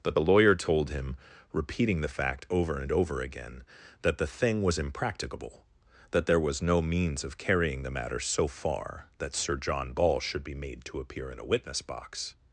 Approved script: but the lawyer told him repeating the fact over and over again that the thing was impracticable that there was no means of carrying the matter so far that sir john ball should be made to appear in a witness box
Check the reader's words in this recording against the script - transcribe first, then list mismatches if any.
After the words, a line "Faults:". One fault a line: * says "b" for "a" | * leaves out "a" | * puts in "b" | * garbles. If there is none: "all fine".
but the lawyer told him repeating the fact over and over again that the thing was impracticable that there was no means of carrying the matter so far that sir john ball should be made to appear in a witness box
Faults:
all fine